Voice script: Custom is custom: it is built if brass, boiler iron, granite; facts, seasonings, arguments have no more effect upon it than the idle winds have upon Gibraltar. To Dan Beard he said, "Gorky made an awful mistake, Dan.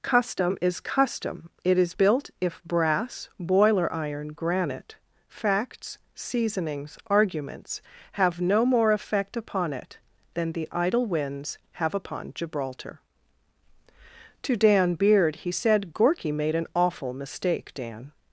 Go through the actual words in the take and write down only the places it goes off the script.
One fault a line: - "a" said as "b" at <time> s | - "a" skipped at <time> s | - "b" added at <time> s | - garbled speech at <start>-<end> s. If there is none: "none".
none